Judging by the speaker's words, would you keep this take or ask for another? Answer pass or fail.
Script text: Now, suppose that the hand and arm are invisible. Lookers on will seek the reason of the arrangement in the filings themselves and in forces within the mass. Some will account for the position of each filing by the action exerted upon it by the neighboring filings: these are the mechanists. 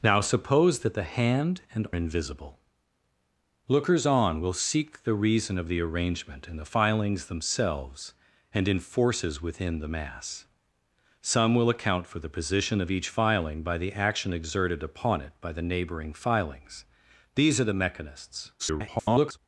fail